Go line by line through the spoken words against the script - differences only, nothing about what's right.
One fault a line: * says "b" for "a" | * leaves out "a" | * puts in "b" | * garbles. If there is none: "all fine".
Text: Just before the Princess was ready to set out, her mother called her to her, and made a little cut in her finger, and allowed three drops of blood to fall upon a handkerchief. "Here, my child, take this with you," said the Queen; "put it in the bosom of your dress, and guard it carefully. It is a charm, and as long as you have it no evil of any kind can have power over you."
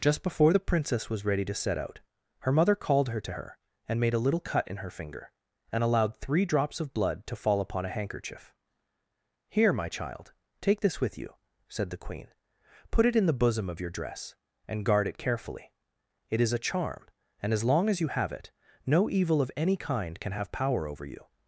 all fine